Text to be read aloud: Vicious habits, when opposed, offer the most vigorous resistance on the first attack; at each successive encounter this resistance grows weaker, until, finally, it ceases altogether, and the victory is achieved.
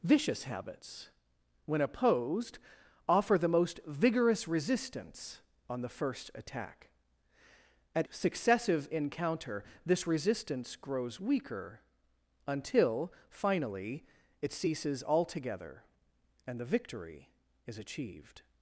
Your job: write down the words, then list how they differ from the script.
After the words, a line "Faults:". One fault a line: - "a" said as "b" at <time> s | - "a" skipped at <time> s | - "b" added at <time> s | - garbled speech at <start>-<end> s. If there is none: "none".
Vicious habits, when opposed, offer the most vigorous resistance on the first attack; at successive encounter this resistance grows weaker, until, finally, it ceases altogether, and the victory is achieved.
Faults:
- "each" skipped at 8.1 s